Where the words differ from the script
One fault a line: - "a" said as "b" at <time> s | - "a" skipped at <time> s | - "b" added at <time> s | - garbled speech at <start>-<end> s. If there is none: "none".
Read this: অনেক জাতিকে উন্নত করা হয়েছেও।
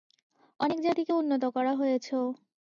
none